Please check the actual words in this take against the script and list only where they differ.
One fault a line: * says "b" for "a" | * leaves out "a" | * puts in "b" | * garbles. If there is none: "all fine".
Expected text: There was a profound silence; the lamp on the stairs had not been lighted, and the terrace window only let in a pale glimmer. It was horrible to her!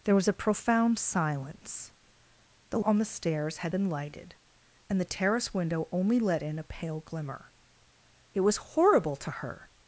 * leaves out "lamp"
* leaves out "not"